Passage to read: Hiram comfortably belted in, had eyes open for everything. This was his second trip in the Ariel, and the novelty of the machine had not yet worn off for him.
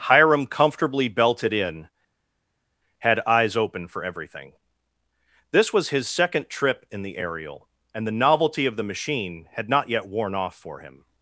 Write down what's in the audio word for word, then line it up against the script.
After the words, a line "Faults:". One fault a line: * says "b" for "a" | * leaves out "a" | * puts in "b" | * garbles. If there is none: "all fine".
Hiram comfortably belted in, had eyes open for everything. This was his second trip in the Ariel, and the novelty of the machine had not yet worn off for him.
Faults:
all fine